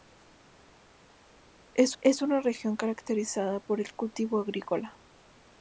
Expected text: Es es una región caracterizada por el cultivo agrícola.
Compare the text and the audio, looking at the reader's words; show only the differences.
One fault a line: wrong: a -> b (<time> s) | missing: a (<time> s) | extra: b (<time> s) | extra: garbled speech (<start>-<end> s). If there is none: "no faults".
no faults